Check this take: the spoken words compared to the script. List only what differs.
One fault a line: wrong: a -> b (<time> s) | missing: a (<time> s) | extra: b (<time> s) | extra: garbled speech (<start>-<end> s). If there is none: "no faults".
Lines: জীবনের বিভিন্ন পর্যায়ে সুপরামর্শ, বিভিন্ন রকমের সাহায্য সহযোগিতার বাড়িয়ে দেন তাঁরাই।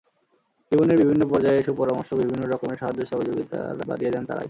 no faults